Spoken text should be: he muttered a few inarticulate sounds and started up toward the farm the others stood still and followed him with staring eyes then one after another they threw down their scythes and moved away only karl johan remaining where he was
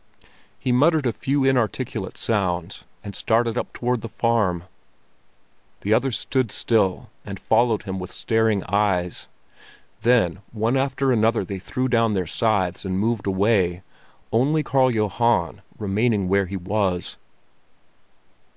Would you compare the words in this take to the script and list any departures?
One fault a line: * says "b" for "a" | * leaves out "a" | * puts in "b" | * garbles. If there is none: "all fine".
all fine